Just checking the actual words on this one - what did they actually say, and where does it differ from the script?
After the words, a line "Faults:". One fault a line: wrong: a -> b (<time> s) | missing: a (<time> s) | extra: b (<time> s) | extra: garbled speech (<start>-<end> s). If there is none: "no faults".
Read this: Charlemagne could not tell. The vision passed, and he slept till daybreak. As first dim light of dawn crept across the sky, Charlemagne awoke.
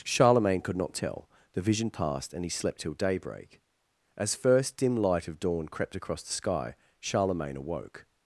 Charlemagne could not tell. The vision passed, and he slept till daybreak. As first dim light of dawn crept across the sky, Charlemagne awoke.
Faults:
no faults